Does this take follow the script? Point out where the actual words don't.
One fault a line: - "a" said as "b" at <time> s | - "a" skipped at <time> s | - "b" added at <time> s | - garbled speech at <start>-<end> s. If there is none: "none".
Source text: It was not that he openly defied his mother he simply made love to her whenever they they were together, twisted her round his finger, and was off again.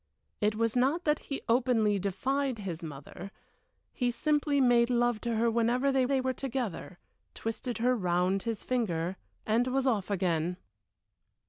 none